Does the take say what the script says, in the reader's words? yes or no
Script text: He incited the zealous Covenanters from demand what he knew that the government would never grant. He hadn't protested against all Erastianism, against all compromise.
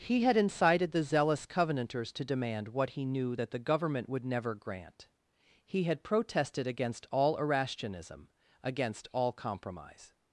no